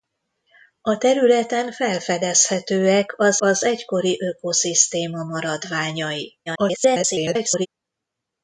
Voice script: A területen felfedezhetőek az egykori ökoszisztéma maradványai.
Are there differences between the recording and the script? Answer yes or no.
yes